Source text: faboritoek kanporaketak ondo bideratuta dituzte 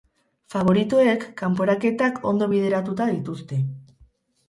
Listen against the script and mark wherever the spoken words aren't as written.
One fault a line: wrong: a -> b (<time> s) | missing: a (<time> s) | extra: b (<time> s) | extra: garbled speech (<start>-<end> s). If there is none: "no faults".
no faults